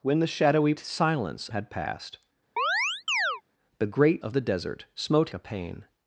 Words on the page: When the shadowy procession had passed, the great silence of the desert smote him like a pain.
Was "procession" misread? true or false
true